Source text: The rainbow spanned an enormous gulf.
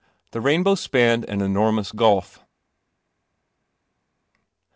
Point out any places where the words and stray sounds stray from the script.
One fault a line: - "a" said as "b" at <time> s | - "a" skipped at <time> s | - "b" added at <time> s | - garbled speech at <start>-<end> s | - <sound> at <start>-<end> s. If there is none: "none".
none